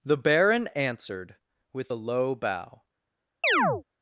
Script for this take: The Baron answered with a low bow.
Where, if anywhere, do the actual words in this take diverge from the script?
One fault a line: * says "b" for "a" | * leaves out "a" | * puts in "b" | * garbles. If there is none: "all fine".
all fine